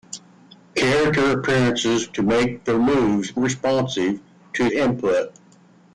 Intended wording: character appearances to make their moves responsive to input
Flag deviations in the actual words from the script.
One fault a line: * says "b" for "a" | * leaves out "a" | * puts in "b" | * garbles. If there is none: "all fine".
all fine